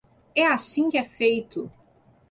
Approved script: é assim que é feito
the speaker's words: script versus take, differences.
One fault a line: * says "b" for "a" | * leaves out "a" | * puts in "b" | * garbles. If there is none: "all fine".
all fine